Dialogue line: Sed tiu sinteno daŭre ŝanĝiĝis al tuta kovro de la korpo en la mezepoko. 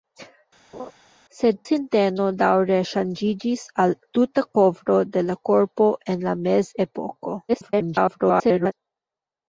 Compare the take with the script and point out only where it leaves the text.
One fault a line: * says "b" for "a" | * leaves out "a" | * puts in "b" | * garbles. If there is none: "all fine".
* leaves out "tiu"
* garbles